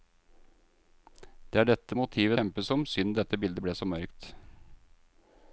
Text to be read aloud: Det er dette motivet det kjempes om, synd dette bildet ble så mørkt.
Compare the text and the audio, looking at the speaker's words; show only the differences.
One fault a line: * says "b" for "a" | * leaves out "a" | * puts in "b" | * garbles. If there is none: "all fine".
* leaves out "det"